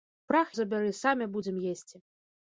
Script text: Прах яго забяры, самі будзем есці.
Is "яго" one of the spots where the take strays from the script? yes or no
yes